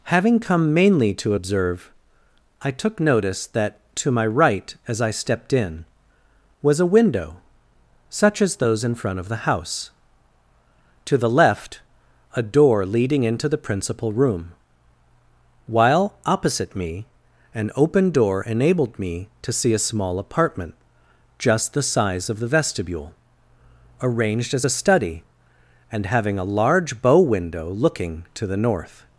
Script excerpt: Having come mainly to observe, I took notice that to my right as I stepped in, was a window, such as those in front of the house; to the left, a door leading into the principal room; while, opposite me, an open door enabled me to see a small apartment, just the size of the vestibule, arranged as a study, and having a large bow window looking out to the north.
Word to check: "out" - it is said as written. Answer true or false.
false